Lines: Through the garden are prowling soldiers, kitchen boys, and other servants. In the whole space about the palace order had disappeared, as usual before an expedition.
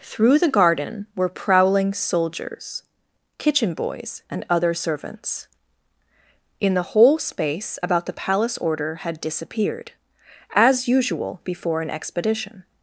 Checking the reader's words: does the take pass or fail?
fail